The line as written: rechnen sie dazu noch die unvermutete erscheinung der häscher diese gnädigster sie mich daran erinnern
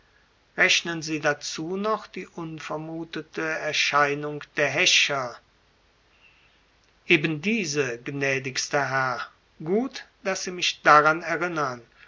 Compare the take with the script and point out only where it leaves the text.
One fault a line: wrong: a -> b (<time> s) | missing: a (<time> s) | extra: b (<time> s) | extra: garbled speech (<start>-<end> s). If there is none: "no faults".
extra: eben (7.0 s)
extra: herr gut daß (8.9 s)